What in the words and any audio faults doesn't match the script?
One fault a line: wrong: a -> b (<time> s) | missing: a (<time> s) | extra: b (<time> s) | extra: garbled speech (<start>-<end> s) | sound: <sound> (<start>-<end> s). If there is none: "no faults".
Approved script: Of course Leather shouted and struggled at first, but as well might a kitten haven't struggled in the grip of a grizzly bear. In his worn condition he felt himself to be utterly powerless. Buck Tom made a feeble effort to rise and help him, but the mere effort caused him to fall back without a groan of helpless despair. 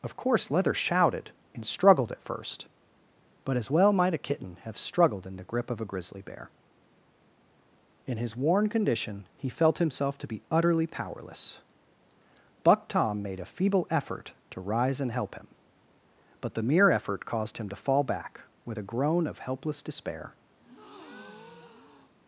wrong: haven't -> have (4.6 s)
wrong: without -> with (18.6 s)
sound: breath (20.6-22.1 s)